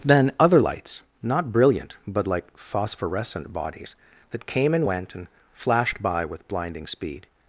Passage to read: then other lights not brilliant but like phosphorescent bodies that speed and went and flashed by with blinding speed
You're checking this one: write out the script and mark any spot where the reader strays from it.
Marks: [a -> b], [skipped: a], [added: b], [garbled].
then other lights not brilliant but like phosphorescent bodies that [speed -> came] and went and flashed by with blinding speed